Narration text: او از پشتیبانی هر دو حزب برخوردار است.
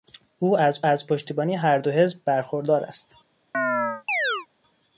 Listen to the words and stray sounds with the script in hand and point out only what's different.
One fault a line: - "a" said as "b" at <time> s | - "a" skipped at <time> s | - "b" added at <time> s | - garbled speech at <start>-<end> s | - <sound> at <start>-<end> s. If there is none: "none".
- "از" added at 0.8 s
- chirp at 3.5-4.5 s